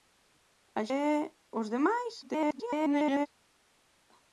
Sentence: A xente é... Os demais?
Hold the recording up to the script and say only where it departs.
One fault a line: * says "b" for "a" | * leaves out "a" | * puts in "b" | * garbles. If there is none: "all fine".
* leaves out "xente"
* garbles